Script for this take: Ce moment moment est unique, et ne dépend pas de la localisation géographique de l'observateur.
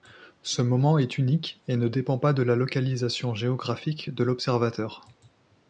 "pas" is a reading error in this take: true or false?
false